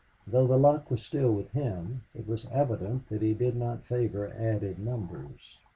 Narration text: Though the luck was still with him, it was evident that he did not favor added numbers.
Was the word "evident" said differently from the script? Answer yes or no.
no